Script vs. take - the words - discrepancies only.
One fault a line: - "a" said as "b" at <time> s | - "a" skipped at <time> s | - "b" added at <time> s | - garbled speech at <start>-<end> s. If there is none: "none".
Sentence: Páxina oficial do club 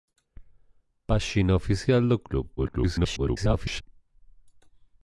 - garbled speech at 2.6-3.8 s